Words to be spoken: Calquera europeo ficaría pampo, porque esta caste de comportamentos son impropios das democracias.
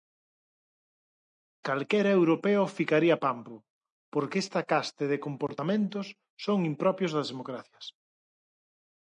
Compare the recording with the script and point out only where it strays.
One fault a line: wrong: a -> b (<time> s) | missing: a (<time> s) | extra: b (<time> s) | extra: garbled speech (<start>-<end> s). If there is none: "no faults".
no faults